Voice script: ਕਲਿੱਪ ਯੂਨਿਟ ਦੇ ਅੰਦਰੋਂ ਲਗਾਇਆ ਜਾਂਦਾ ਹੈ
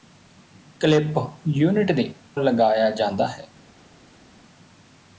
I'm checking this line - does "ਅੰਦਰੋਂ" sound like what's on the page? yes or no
no